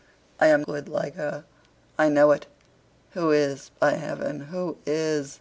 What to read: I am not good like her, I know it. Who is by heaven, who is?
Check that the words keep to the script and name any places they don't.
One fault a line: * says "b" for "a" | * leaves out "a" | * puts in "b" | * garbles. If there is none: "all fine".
* leaves out "not"